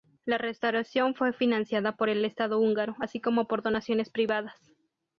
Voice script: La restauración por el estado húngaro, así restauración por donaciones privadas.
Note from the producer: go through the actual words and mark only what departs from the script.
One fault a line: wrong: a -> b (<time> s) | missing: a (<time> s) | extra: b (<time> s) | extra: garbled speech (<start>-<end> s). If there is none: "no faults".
extra: fue financiada (1.1 s)
wrong: restauración -> como (3.2 s)